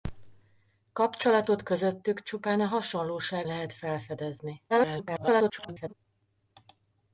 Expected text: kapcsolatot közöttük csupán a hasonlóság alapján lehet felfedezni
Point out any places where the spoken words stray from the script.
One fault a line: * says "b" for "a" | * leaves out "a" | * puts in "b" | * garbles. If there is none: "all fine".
* leaves out "alapján"
* garbles